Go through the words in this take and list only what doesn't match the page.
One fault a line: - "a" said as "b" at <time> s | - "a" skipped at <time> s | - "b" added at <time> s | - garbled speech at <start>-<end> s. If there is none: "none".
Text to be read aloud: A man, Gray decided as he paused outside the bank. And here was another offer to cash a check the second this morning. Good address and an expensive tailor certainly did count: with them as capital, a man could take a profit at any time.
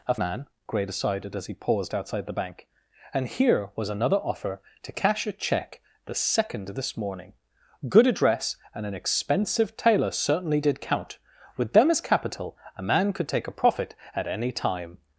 none